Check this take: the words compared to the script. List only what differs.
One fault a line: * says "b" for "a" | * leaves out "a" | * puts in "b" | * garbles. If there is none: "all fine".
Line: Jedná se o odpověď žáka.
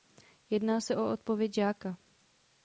all fine